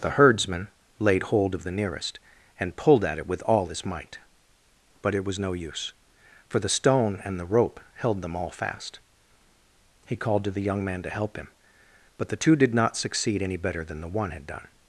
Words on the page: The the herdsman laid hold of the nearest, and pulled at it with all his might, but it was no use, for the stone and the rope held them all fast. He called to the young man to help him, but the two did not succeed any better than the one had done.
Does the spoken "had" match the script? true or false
true